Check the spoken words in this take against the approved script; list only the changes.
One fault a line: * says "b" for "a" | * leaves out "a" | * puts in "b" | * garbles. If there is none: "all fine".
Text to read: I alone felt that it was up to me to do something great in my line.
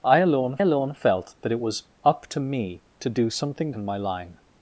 * puts in "alone"
* leaves out "great"